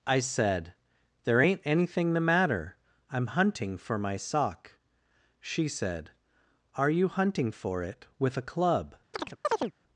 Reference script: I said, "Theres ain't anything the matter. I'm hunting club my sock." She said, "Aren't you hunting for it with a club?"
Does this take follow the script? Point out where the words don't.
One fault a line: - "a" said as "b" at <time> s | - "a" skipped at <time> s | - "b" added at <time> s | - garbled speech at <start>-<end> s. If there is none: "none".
- "Theres" said as "There" at 1.2 s
- "club" said as "for" at 3.8 s
- "Aren't" said as "Are" at 6.8 s